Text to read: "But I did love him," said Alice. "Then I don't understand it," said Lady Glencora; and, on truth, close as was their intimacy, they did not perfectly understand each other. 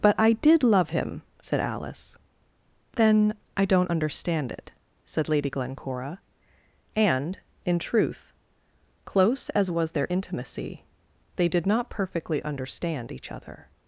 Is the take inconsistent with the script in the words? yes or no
yes